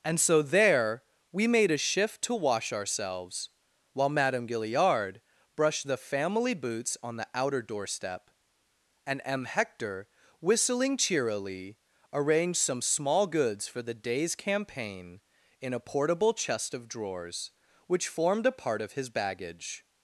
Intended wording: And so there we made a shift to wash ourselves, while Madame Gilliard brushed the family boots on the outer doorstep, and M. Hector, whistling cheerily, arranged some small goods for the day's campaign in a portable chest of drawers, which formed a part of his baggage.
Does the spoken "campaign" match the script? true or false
true